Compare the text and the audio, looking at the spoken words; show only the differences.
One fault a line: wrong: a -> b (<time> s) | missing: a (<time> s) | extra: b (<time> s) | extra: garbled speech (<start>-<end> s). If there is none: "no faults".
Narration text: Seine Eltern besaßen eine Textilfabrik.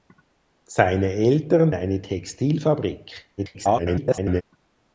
missing: besaßen (1.7 s)
extra: garbled speech (3.4-4.4 s)